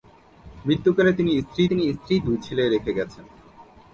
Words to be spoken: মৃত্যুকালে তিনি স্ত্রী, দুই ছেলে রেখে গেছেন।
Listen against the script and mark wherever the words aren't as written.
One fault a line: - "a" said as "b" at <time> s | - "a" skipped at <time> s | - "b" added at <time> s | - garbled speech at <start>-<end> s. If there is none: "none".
- "তিনি স্ত্রী" added at 1.7 s